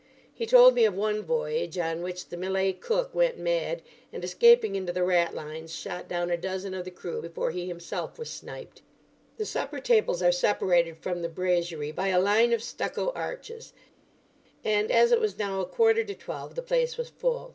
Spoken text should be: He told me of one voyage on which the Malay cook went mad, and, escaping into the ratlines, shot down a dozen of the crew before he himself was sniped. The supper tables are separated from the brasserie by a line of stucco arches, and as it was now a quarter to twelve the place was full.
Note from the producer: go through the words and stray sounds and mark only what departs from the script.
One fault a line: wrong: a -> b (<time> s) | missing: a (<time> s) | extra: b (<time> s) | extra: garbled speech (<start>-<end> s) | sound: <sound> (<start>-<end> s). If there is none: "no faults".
no faults